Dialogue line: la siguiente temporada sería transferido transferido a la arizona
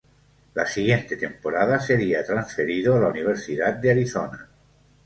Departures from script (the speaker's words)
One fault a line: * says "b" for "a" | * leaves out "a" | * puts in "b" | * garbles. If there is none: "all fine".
* leaves out "transferido"
* puts in "universidad de"